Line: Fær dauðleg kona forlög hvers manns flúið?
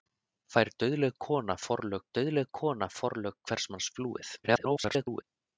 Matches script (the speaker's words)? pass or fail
fail